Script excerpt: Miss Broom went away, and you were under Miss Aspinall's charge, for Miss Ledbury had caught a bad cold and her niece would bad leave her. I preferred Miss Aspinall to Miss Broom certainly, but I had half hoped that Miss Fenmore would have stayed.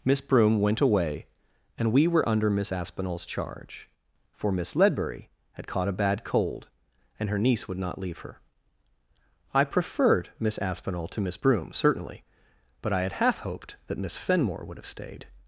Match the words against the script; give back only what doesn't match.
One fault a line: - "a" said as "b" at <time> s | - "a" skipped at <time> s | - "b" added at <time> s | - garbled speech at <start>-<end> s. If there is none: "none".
- "you" said as "we" at 1.9 s
- "bad" said as "not" at 7.8 s